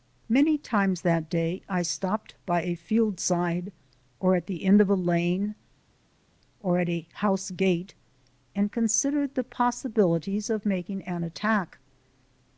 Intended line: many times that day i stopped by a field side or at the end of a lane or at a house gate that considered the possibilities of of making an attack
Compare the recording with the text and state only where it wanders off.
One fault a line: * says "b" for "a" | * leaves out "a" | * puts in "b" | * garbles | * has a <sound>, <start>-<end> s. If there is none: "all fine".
* says "and" for "that"
* leaves out "of"